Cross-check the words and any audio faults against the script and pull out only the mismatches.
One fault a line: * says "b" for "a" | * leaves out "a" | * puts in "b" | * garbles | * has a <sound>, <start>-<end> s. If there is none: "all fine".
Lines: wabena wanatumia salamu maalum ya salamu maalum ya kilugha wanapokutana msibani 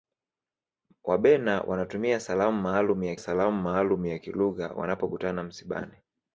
all fine